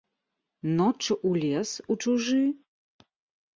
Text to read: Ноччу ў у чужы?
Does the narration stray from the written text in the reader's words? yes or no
yes